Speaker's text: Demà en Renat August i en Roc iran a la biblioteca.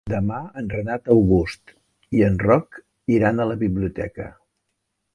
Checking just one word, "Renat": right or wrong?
right